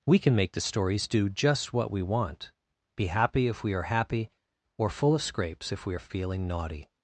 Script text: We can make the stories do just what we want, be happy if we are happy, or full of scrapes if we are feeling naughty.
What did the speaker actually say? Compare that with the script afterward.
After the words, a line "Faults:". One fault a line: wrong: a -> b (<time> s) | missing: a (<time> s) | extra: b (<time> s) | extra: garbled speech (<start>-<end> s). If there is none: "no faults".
We can make the stories do just what we want, be happy if we are happy, or full of scrapes if we are feeling naughty.
Faults:
no faults